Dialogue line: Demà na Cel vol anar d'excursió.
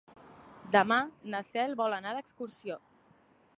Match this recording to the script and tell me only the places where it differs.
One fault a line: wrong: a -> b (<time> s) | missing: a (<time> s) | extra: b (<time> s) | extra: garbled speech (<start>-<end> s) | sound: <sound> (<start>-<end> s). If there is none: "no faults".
no faults